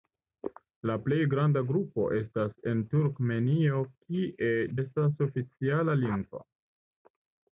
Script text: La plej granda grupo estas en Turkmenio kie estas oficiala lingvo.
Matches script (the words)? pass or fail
pass